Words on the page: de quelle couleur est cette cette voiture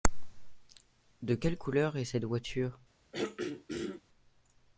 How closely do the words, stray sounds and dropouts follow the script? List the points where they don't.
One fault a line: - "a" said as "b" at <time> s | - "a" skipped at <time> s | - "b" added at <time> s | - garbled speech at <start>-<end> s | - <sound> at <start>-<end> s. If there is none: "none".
- "cette" skipped at 2.2 s
- throat clearing at 3.1-4.0 s